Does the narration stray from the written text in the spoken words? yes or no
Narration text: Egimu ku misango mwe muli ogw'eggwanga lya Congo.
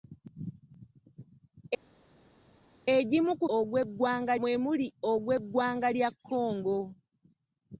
yes